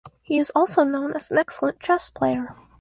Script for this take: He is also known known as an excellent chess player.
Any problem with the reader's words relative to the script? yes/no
yes